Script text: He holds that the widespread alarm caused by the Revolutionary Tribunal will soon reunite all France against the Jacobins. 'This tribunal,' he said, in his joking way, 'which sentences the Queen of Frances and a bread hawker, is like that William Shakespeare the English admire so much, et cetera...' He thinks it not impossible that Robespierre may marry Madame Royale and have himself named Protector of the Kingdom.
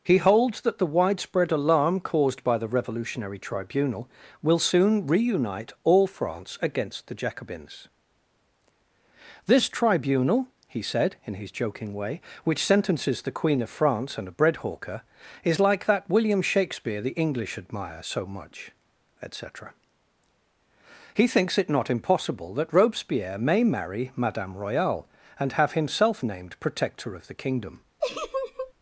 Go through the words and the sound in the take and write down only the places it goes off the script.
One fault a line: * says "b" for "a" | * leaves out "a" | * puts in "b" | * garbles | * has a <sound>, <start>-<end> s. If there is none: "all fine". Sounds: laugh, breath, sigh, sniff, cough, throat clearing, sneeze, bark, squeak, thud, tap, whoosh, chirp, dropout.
* says "France" for "Frances"
* has a laugh, 28.0-28.7 s